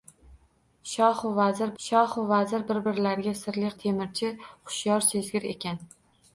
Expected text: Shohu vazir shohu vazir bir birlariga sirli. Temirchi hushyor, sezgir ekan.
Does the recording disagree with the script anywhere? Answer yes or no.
no